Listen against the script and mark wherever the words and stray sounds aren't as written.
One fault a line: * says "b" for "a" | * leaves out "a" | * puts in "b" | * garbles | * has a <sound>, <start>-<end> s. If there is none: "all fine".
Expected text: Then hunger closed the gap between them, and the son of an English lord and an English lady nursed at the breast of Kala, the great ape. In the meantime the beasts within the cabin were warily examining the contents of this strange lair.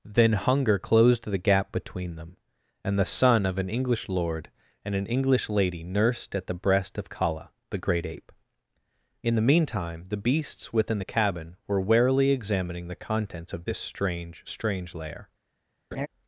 * puts in "strange"
* has a laugh, 15.9-16.1 s